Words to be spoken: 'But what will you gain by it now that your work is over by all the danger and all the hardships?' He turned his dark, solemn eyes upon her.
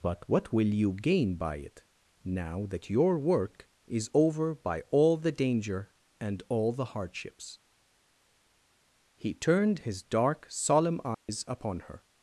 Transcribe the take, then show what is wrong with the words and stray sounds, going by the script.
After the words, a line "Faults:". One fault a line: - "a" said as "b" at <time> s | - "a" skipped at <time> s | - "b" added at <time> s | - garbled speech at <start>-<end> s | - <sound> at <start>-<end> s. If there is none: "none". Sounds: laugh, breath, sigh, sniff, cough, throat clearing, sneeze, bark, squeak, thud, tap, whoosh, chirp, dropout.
'But what will you gain by it now that your work is over by all the danger and all the hardships?' He turned his dark, solemn eyes upon her.
Faults:
- dropout at 11.1-11.3 s